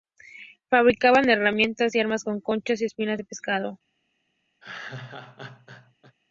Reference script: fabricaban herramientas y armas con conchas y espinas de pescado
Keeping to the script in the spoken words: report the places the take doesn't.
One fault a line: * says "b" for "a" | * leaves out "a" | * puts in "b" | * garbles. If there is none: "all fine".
all fine